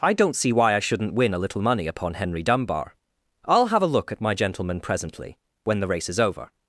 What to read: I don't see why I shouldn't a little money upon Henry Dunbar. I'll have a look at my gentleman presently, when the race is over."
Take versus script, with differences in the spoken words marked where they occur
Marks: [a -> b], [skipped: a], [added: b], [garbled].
I don't see why I shouldn't [added: win] a little money upon Henry Dunbar. I'll have a look at my gentleman presently, when the race is over."